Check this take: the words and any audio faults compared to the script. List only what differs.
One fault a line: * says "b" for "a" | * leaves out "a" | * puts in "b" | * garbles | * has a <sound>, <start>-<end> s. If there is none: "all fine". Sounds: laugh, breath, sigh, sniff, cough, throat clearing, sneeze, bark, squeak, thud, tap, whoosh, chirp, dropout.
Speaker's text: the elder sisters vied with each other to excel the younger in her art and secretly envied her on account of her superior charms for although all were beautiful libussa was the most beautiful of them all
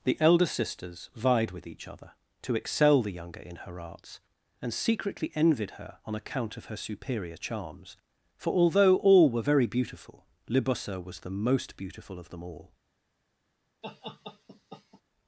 * says "arts" for "art"
* puts in "very"
* has a laugh, 13.8-15.0 s